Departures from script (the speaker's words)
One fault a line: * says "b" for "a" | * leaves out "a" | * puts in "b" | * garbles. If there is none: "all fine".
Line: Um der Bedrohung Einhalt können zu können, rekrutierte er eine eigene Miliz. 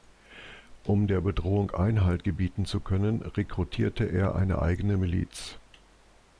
* says "gebieten" for "können"